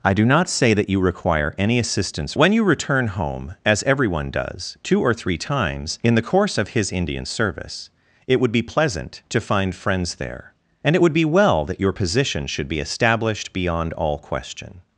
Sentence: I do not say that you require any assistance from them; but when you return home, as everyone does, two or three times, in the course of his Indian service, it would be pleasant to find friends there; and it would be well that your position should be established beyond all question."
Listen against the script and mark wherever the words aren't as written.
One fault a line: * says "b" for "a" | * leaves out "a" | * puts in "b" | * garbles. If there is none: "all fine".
* leaves out "from them but"